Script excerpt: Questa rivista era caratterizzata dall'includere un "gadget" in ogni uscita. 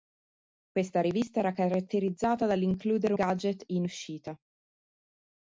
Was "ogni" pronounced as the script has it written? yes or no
no